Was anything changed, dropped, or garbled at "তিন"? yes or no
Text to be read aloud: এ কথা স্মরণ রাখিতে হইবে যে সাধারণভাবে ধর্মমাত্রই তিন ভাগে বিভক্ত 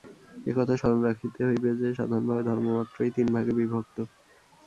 no